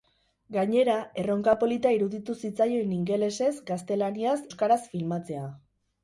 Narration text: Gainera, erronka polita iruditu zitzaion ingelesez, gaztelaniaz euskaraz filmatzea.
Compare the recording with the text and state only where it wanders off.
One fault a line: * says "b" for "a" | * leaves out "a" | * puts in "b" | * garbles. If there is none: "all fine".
all fine